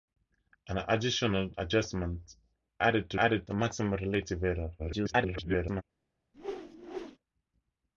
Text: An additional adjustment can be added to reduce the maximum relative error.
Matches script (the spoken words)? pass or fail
fail